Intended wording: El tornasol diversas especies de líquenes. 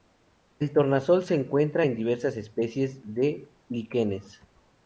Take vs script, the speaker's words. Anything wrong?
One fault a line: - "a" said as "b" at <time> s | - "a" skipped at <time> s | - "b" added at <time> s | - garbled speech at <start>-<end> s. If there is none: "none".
- "se encuentra en" added at 1.2 s